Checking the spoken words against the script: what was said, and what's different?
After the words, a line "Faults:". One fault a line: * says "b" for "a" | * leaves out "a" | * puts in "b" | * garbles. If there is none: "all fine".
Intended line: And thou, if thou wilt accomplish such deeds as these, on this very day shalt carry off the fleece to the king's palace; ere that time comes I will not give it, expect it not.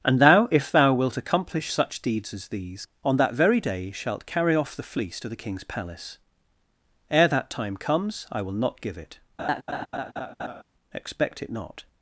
And thou, if thou wilt accomplish such deeds as these, on that very day shalt carry off the fleece to the king's palace; ere that time comes I will not give it, expect it not.
Faults:
* says "that" for "this"